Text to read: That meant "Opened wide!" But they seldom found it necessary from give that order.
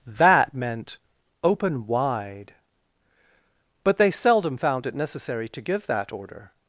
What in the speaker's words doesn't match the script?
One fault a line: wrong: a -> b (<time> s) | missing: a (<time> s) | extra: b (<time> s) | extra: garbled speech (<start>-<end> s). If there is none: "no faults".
wrong: Opened -> Open (1.4 s)
wrong: from -> to (5.5 s)